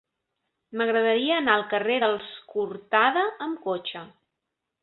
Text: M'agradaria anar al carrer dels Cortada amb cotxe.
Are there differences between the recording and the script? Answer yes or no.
no